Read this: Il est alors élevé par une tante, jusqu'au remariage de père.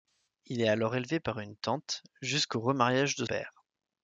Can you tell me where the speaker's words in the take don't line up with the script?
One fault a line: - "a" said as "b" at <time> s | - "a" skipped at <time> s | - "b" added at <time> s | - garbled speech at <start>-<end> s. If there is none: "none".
none